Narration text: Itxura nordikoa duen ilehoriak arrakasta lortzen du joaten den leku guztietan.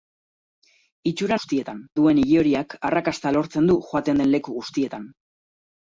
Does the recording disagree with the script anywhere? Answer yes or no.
yes